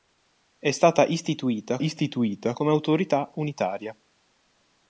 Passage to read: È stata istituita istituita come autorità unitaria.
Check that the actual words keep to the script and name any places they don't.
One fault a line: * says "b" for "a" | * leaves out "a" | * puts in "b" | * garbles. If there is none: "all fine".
all fine